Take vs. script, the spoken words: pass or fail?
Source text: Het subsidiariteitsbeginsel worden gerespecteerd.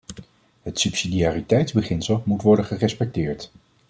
fail